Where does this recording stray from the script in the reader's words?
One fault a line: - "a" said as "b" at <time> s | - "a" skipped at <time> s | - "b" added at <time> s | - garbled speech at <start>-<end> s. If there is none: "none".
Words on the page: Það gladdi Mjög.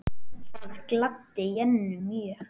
- "Jennu" added at 1.6 s